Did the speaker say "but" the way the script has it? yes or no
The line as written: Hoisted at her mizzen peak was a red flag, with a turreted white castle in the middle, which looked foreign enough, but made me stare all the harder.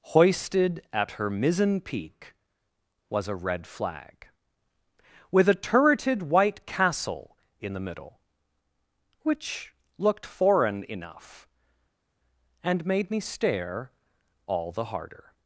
no